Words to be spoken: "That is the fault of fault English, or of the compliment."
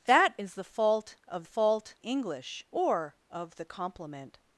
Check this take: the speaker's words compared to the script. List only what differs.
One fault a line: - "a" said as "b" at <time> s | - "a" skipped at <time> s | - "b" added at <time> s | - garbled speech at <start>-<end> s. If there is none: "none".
none